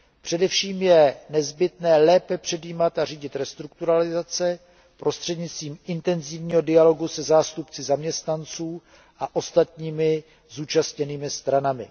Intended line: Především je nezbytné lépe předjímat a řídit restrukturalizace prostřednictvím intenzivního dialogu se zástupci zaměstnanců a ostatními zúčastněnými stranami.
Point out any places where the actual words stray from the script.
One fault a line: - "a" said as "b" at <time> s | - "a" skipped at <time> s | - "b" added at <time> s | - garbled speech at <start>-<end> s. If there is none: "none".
none